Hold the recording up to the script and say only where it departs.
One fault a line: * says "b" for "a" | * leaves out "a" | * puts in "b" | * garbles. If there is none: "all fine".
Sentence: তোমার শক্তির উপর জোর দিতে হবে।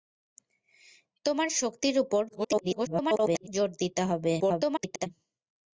* garbles
* garbles